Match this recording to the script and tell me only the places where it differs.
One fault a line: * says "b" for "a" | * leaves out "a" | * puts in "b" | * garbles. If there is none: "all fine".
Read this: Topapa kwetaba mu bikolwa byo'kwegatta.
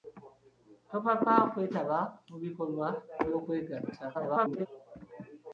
* garbles